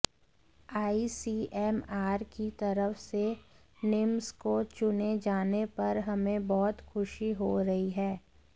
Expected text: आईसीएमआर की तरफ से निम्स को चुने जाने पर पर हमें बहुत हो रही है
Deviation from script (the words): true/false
true